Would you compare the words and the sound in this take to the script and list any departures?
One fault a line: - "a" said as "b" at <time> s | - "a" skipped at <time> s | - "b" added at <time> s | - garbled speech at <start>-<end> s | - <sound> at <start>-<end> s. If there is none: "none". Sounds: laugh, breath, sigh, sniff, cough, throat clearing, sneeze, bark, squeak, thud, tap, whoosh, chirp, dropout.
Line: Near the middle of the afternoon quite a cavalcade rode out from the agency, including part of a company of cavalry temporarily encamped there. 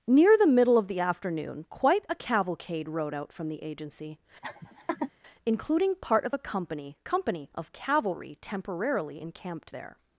- laugh at 4.4-5.1 s
- "company" added at 7.0 s